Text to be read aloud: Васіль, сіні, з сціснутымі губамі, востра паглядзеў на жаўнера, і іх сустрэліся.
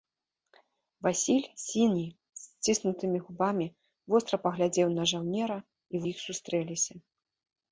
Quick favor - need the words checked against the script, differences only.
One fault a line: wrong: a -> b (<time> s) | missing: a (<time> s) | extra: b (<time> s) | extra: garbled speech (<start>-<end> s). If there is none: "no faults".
no faults